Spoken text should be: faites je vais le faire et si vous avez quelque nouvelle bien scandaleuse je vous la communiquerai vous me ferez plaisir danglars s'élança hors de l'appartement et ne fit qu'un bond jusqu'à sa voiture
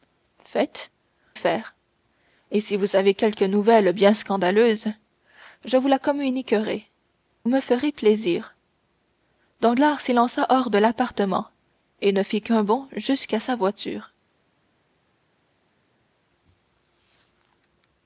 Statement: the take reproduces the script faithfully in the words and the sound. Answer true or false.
false